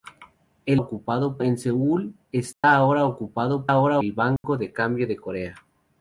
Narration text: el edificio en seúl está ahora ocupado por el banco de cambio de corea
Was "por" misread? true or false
true